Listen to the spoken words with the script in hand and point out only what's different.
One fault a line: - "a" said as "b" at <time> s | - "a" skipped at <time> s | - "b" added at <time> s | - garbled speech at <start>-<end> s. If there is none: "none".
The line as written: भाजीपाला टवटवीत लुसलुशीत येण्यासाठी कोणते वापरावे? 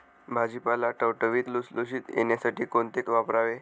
none